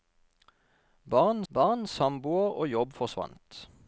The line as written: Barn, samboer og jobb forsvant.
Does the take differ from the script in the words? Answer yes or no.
yes